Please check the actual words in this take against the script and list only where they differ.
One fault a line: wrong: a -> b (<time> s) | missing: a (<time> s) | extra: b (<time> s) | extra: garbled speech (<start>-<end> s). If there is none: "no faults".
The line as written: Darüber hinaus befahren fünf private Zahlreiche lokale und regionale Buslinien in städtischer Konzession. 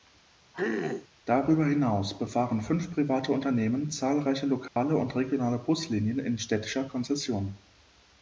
extra: Unternehmen (3.3 s)